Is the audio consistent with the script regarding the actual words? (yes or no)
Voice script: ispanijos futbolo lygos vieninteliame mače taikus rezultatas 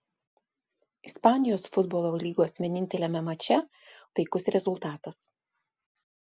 yes